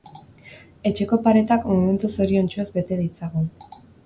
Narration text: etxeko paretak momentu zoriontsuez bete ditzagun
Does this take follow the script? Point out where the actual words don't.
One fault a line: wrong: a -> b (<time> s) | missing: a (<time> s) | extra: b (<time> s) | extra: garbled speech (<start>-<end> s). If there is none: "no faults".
no faults